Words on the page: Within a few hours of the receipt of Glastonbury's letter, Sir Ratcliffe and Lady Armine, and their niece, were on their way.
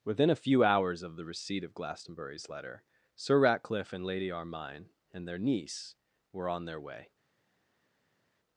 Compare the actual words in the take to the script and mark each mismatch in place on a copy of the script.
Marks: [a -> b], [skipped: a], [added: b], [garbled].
Within a few hours of the receipt of Glastonbury's letter, Sir Ratcliffe and Lady Armine, and their niece, were on their way.